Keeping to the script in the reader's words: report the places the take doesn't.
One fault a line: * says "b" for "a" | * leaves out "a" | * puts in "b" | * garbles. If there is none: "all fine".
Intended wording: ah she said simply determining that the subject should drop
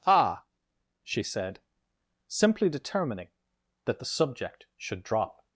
all fine